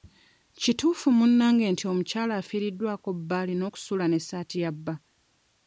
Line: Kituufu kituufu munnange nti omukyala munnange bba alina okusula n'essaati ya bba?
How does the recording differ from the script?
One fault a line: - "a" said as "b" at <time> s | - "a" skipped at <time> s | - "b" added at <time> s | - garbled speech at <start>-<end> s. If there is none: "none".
- "kituufu" skipped at 1.1 s
- "munnange" said as "afiiriddwako" at 2.4 s